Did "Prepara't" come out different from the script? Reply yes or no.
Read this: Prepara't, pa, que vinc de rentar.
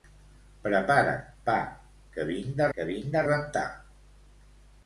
no